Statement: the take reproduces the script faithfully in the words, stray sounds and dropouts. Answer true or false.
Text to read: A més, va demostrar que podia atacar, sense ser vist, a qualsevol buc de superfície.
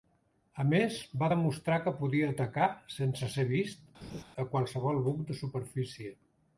false